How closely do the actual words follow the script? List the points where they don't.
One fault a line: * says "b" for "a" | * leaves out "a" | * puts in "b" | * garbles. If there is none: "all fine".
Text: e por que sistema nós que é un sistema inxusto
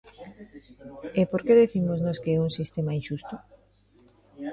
* says "dicimos" for "sistema"